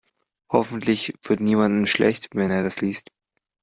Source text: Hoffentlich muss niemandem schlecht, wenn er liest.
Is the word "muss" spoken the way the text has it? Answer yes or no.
no